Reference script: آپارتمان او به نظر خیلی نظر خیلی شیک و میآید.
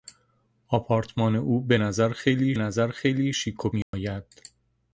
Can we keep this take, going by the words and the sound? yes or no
no